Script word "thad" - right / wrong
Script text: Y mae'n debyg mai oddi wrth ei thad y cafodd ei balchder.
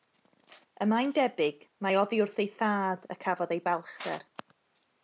right